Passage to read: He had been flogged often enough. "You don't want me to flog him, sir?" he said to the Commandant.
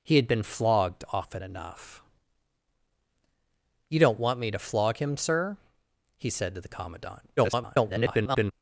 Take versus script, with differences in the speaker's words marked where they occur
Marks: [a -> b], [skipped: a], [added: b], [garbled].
He had been flogged often enough. "You don't want me to flog him, sir?" he said to the Commandant. [garbled]